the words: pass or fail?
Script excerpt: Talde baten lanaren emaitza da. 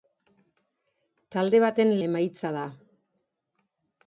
fail